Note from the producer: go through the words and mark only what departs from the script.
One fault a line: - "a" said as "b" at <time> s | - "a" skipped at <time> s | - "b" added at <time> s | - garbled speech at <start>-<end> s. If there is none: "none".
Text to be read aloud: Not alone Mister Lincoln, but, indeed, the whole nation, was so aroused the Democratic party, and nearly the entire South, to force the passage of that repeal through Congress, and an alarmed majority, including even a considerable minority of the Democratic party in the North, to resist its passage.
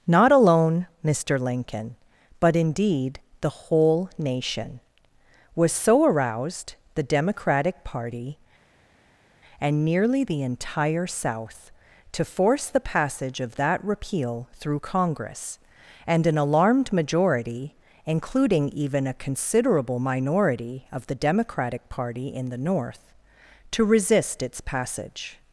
none